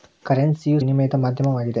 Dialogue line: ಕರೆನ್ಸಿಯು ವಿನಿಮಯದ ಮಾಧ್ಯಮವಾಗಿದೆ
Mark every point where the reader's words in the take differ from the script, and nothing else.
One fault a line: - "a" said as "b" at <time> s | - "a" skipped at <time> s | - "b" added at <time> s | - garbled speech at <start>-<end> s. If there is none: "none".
none